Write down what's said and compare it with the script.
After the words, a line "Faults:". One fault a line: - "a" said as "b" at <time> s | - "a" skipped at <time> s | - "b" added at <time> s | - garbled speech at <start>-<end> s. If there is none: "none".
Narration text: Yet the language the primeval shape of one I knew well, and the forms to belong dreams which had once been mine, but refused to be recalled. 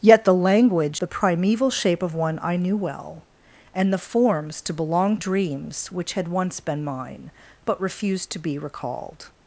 Yet the language the primeval shape of one I knew well, and the forms to belong dreams which had once been mine, but refused to be recalled.
Faults:
none